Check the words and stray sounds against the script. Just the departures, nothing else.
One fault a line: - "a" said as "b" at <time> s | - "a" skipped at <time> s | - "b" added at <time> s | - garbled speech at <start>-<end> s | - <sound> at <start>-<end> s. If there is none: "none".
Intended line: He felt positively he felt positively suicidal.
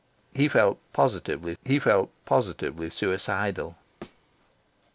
- thud at 4.0-4.2 s